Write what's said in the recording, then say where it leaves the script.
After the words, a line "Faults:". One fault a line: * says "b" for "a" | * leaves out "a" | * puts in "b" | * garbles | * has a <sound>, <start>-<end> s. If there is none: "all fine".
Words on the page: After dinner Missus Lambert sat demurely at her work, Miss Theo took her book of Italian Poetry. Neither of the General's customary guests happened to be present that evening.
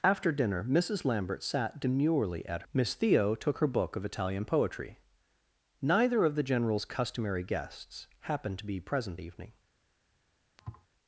After dinner Missus Lambert sat demurely at Miss Theo took her book of Italian Poetry. Neither of the General's customary guests happened to be present evening.
Faults:
* leaves out "her work"
* leaves out "that"
* has a thud, 10.6-10.9 s